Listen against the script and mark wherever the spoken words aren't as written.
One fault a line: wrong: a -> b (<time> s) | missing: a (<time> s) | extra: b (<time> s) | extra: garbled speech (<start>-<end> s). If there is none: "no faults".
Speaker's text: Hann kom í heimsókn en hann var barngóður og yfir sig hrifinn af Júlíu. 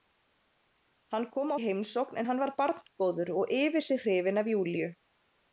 no faults